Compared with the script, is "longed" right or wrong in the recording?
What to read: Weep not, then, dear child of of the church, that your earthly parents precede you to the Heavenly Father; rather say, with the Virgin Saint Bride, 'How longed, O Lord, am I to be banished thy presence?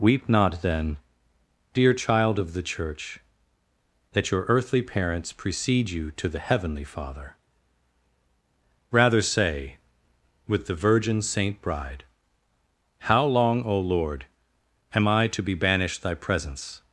wrong